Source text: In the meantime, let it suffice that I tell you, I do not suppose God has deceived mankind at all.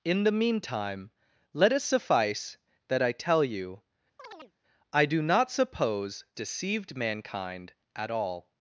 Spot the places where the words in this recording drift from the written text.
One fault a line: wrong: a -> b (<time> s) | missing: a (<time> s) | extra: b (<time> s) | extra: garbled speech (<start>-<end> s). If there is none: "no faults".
missing: God has (6.2 s)